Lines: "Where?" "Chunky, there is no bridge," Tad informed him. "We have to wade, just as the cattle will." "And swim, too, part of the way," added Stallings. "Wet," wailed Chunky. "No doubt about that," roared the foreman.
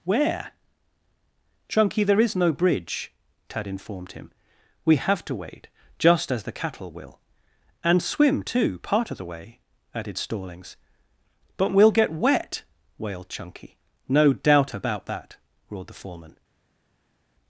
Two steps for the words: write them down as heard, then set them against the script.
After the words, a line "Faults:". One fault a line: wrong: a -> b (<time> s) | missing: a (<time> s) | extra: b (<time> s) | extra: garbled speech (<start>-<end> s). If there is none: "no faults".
"Where?" "Chunky, there is no bridge," Tad informed him. "We have to wade, just as the cattle will." "And swim, too, part of the way," added Stallings. "But we'll get wet," wailed Chunky. "No doubt about that," roared the foreman.
Faults:
extra: But we'll get (11.6 s)